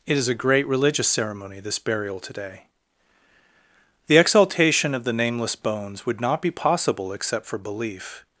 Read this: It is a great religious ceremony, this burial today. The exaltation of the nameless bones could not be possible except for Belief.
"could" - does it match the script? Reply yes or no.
no